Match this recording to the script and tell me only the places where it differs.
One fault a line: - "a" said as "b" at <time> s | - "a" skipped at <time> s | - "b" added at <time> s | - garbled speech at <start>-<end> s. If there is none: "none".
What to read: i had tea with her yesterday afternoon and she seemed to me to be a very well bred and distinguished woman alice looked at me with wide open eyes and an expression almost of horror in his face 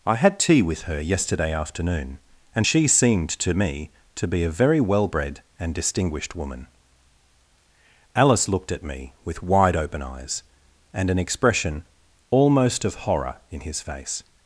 none